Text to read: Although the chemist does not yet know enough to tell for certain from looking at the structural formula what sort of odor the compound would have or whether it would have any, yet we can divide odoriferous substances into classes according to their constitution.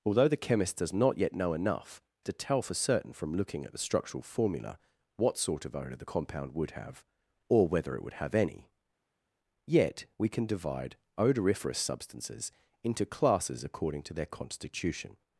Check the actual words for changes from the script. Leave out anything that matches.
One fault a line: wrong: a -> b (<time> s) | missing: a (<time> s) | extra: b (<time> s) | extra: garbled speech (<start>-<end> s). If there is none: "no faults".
no faults